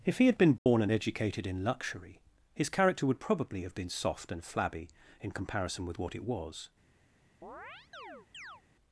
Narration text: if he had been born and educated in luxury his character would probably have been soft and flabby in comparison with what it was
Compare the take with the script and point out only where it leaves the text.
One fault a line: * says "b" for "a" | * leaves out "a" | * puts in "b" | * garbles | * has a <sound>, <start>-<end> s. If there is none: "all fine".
* has a dropout, 0.6-0.7 s
* has a chirp, 7.4-8.6 s